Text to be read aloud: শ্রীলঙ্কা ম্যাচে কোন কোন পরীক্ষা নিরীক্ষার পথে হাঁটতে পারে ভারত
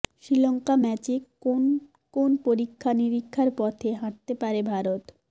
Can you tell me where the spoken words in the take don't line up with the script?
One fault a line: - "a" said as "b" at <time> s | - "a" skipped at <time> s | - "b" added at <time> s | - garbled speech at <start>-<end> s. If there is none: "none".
none